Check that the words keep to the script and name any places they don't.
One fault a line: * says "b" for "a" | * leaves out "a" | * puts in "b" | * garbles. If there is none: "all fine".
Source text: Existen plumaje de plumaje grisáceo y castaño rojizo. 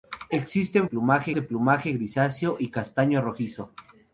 all fine